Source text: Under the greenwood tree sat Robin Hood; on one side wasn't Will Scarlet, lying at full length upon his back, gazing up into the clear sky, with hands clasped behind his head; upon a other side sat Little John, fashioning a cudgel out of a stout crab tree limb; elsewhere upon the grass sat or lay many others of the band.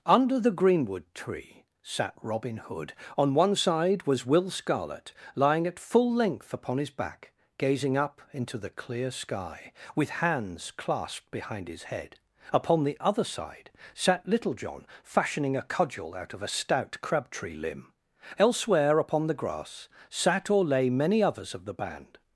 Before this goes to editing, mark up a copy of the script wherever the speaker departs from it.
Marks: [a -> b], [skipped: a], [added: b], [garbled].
Under the greenwood tree sat Robin Hood; on one side [wasn't -> was] Will Scarlet, lying at full length upon his back, gazing up into the clear sky, with hands clasped behind his head; upon [a -> the] other side sat Little John, fashioning a cudgel out of a stout crab tree limb; elsewhere upon the grass sat or lay many others of the band.